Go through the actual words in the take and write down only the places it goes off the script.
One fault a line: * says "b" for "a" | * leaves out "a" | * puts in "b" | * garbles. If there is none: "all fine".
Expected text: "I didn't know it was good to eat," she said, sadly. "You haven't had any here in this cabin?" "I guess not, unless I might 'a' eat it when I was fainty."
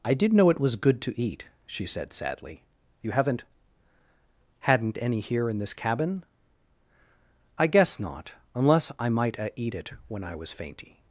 * says "did" for "didn't"
* says "hadn't" for "had"